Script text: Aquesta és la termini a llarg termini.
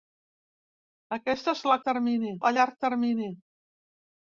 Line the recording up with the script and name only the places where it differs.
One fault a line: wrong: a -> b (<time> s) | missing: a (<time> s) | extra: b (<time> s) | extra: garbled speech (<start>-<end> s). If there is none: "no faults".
no faults